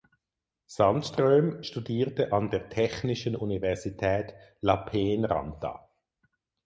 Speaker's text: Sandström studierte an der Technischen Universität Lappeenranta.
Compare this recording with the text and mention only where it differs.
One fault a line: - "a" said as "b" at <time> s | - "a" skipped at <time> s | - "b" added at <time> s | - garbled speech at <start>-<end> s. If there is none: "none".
none